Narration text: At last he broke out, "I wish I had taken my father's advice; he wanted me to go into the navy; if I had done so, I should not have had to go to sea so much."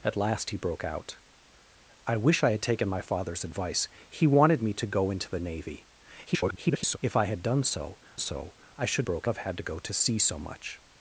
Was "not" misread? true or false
true